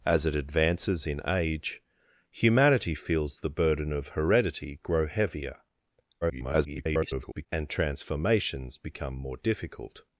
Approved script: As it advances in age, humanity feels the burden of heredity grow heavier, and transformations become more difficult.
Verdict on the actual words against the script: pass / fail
fail